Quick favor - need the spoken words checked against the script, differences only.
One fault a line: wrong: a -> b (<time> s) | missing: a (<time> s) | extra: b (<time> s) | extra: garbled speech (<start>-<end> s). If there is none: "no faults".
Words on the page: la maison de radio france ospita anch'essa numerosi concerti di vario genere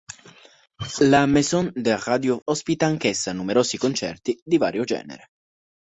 missing: france (2.4 s)